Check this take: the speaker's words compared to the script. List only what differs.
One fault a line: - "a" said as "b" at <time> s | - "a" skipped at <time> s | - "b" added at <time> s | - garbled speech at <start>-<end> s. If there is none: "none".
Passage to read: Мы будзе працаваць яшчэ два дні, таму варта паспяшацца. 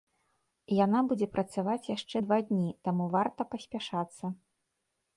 - "Мы" said as "Яна" at 0.8 s